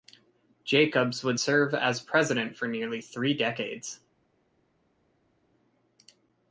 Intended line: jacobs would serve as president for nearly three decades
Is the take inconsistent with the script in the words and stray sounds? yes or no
no